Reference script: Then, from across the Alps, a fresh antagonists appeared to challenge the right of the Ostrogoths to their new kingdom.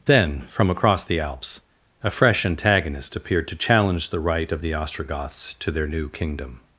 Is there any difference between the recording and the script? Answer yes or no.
yes